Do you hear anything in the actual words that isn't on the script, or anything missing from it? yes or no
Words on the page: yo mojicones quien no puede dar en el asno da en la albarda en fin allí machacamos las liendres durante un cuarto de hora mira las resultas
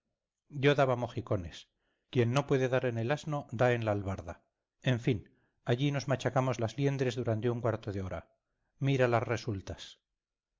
yes